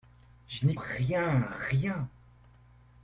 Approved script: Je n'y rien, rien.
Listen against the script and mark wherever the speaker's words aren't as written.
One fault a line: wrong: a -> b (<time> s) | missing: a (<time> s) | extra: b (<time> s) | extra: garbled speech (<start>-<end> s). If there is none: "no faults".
no faults